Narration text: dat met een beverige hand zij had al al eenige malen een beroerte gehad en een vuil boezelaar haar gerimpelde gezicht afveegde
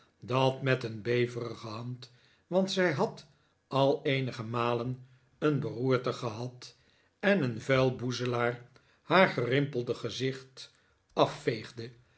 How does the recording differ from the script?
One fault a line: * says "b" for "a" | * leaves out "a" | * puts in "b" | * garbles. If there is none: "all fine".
* puts in "want"
* leaves out "al"